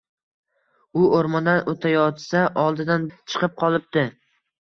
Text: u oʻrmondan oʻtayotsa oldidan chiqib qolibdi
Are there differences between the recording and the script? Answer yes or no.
no